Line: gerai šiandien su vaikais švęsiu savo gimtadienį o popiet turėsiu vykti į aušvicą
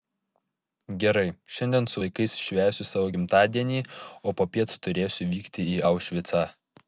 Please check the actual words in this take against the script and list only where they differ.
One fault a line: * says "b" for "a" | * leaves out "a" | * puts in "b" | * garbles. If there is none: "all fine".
all fine